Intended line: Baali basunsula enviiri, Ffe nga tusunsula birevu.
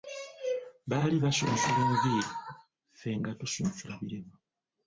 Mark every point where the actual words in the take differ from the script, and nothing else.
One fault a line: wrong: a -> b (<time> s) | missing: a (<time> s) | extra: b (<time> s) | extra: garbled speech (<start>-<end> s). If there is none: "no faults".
no faults